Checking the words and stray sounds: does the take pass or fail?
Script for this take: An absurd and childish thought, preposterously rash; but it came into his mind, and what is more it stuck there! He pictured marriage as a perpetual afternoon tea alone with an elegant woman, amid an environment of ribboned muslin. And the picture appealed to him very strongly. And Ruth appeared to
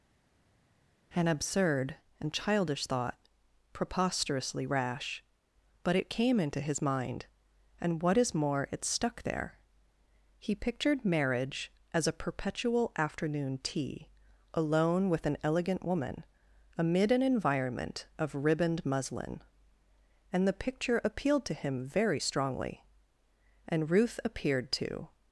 pass